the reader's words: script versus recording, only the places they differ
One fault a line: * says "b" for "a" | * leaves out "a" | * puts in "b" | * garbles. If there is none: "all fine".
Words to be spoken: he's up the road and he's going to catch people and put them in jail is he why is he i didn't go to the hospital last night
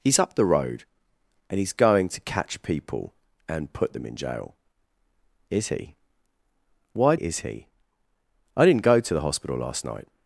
all fine